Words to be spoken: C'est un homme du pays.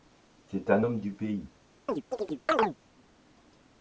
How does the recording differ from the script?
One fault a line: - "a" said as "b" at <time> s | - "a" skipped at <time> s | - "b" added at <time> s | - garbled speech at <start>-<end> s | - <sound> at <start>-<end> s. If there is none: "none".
- chirp at 1.9-2.8 s